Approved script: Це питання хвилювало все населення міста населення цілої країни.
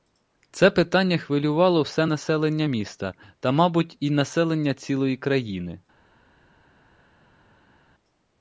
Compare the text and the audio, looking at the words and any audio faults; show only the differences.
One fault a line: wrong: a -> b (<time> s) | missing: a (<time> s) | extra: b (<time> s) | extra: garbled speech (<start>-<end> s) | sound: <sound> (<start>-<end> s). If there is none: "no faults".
extra: та мабуть і (3.4 s)